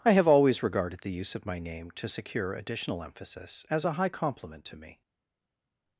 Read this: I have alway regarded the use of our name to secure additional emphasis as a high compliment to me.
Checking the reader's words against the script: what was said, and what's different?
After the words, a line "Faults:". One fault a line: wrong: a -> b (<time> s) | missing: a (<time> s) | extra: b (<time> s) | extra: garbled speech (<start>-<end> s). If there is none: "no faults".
I have always regarded the use of my name to secure additional emphasis as a high compliment to me.
Faults:
wrong: alway -> always (0.3 s)
wrong: our -> my (1.4 s)